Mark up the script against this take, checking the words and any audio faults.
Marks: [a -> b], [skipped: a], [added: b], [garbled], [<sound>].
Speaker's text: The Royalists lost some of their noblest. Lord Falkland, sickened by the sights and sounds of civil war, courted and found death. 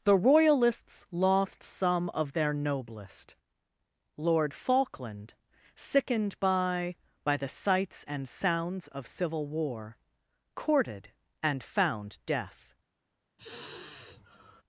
The Royalists lost some of their noblest. Lord Falkland, sickened by [added: by] the sights and sounds of civil war, courted and found death. [sigh]